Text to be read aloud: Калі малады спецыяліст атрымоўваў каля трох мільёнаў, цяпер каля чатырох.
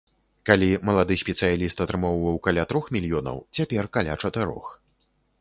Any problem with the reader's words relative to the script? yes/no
no